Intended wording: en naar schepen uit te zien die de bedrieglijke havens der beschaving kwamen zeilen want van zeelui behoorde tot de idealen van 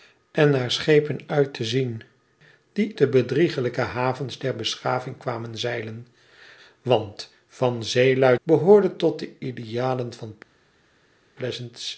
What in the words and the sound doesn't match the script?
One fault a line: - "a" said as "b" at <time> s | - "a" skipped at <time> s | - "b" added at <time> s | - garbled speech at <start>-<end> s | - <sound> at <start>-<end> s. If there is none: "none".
none